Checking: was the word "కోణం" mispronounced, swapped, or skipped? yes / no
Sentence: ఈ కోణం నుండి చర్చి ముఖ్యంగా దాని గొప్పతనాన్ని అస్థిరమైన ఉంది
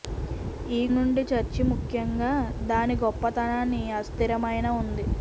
yes